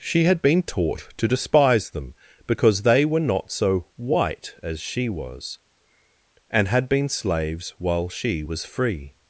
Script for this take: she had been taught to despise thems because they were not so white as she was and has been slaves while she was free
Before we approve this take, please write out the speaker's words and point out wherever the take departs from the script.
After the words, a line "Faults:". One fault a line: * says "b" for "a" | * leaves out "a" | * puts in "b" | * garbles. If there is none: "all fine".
she had been taught to despise them because they were not so white as she was and had been slaves while she was free
Faults:
* says "them" for "thems"
* says "had" for "has"